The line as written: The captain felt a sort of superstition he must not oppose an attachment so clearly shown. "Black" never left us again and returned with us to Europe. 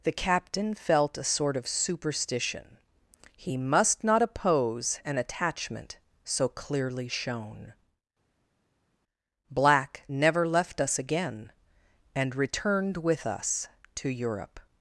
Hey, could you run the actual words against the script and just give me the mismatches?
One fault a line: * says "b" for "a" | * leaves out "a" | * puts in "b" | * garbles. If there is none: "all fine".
all fine